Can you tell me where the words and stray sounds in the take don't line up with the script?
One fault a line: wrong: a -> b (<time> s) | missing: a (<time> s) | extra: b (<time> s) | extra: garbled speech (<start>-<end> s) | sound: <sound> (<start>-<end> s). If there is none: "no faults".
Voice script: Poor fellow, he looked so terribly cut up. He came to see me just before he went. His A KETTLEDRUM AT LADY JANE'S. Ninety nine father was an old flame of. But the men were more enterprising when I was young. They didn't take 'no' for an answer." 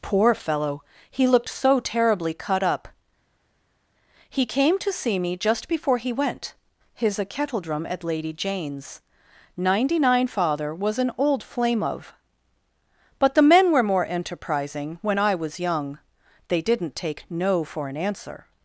no faults